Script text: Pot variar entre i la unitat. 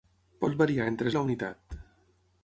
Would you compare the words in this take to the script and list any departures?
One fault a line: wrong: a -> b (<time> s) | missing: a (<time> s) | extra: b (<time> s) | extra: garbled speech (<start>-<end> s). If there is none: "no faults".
no faults